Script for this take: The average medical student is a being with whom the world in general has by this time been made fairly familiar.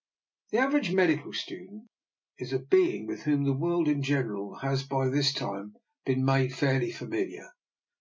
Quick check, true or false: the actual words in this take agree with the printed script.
true